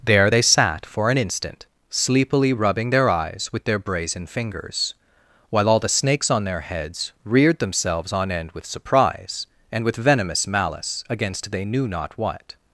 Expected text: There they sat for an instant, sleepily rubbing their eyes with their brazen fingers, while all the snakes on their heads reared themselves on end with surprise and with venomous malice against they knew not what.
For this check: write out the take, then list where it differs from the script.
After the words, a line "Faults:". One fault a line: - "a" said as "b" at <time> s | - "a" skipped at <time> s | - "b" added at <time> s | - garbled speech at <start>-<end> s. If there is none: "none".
There they sat for an instant, sleepily rubbing their eyes with their brazen fingers, while all the snakes on their heads reared themselves on end with surprise and with venomous malice against they knew not what.
Faults:
none